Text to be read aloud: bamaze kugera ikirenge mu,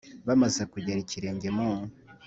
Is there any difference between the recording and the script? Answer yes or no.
no